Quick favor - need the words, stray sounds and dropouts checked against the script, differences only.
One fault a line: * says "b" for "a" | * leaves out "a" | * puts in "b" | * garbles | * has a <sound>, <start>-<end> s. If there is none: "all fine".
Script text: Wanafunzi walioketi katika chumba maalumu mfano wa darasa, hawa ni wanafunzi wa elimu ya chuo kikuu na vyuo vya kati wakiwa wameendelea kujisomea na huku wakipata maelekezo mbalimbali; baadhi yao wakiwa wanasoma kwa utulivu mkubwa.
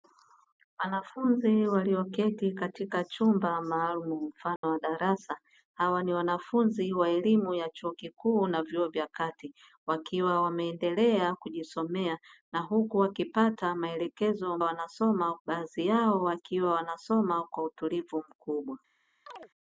* has a dropout, 4.6-4.6 s
* says "wanasoma" for "mbalimbali"
* has a chirp, 19.3-19.5 s